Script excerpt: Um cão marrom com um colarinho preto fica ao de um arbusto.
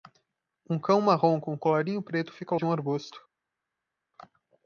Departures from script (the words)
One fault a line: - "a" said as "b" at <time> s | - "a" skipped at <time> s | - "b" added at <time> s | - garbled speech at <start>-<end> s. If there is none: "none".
none